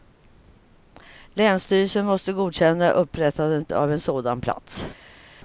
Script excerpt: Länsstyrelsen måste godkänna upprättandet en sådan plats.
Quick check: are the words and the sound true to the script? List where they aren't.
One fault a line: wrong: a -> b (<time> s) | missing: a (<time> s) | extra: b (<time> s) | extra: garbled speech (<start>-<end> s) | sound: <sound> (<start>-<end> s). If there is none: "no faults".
extra: av (3.7 s)